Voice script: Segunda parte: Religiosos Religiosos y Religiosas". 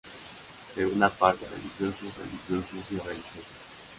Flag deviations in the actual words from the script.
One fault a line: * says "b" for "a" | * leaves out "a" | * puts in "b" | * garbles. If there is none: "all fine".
all fine